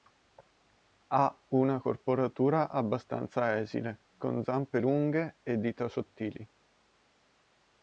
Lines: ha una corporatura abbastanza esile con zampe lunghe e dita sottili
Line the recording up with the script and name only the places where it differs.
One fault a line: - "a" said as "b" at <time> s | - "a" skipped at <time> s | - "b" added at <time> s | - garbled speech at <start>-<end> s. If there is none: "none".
none